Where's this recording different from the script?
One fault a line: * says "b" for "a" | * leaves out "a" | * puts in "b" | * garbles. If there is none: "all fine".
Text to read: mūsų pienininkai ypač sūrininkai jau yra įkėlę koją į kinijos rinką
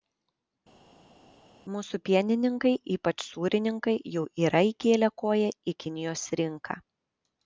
all fine